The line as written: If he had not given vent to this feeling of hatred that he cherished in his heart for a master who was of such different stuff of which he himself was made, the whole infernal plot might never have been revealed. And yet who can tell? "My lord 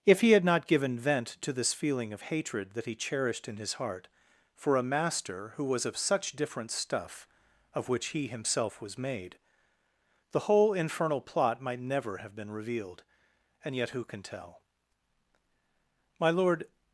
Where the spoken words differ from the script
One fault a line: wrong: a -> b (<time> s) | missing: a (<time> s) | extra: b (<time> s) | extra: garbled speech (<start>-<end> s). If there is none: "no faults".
no faults